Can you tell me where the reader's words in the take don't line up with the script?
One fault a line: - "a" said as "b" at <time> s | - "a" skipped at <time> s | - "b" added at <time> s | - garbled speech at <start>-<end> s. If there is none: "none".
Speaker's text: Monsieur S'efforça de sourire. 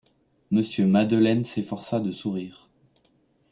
- "Madeleine" added at 0.9 s